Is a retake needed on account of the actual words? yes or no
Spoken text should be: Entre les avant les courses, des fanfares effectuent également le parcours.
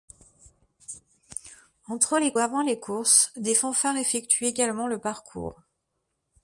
no